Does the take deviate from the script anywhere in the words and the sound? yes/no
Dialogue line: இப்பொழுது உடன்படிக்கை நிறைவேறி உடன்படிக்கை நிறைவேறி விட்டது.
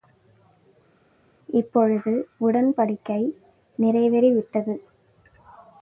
yes